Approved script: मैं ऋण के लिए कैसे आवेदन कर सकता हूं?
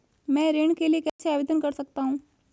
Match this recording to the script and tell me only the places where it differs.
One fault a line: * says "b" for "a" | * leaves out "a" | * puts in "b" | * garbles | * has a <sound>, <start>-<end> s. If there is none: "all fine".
* has a dropout, 1.1-1.2 s